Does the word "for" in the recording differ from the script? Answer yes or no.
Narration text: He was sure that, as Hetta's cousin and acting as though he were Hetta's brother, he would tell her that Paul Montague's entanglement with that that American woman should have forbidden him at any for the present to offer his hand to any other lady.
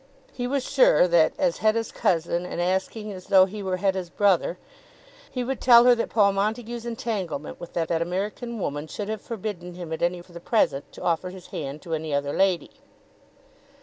no